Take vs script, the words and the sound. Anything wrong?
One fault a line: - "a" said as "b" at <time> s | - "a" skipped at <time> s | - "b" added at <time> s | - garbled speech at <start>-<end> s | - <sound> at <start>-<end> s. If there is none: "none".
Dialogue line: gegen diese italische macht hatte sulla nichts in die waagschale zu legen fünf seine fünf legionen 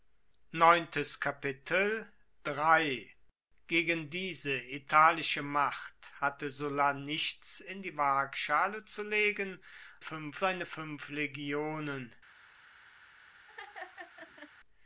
- laugh at 13.5-14.5 s